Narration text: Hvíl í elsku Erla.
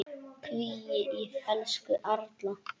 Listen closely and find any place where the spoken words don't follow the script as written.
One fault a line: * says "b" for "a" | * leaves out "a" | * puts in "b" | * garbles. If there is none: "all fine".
all fine